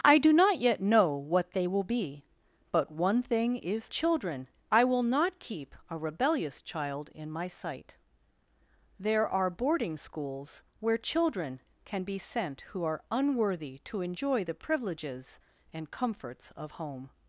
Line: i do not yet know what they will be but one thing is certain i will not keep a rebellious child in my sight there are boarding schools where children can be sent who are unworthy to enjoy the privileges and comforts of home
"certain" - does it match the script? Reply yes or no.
no